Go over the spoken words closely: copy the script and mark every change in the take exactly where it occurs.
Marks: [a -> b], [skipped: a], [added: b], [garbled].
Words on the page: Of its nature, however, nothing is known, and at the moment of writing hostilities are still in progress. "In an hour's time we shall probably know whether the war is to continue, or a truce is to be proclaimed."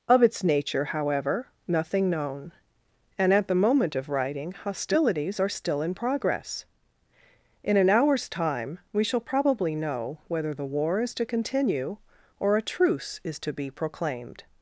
Of its nature, however, nothing [skipped: is] known, and at the moment of writing hostilities are still in progress. "In an hour's time we shall probably know whether the war is to continue, or a truce is to be proclaimed."